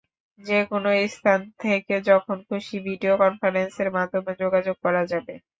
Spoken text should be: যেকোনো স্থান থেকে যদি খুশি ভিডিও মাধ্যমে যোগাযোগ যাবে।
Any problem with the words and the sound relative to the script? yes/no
yes